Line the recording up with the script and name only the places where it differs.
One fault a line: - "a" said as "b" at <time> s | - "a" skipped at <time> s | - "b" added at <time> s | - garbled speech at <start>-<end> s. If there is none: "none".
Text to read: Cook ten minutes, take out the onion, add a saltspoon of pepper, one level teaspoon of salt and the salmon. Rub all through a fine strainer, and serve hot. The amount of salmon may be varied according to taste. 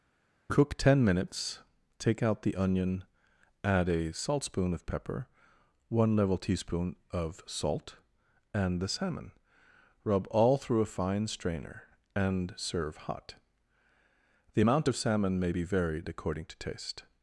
none